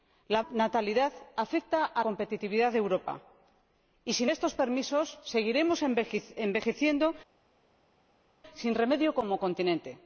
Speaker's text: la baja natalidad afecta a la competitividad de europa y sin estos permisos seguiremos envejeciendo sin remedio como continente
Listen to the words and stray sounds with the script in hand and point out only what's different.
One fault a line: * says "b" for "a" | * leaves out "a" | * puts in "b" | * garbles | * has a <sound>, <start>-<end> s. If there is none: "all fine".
* leaves out "baja"
* leaves out "la"